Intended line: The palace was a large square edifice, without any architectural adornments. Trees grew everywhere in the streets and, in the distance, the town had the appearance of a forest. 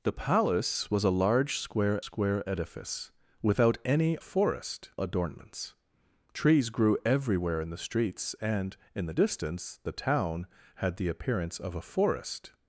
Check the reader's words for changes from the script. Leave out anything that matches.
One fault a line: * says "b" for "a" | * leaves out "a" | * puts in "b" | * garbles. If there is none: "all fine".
* puts in "square"
* says "forest" for "architectural"